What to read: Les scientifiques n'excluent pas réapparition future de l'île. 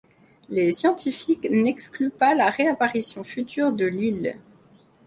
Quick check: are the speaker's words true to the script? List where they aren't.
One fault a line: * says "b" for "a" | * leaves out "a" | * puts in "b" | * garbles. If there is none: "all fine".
* puts in "la"